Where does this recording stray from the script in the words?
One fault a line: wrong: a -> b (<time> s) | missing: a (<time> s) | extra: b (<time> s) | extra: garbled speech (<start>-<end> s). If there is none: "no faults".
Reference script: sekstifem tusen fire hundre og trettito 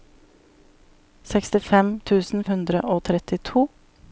missing: fire (2.5 s)